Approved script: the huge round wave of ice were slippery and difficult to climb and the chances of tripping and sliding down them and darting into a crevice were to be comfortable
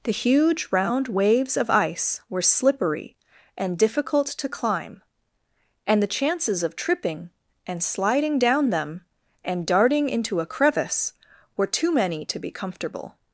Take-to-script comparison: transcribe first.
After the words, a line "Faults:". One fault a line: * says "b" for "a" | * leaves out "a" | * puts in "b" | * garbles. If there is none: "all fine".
the huge round waves of ice were slippery and difficult to climb and the chances of tripping and sliding down them and darting into a crevice were too many to be comfortable
Faults:
* says "waves" for "wave"
* puts in "too many"